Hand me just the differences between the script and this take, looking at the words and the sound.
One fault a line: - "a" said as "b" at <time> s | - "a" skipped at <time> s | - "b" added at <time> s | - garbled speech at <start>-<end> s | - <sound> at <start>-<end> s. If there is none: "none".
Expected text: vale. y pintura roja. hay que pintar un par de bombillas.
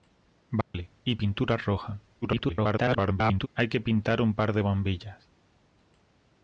- dropout at 0.6-0.7 s
- garbled speech at 2.2-3.5 s